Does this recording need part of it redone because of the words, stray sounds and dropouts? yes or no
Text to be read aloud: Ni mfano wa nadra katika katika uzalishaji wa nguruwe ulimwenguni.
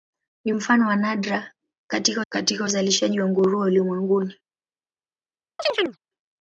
yes